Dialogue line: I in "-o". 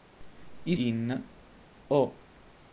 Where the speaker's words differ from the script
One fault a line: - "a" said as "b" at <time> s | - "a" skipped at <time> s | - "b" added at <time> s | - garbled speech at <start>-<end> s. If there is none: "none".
none